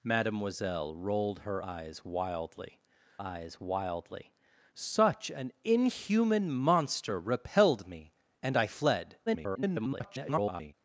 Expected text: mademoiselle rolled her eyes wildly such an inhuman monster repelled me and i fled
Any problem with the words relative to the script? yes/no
yes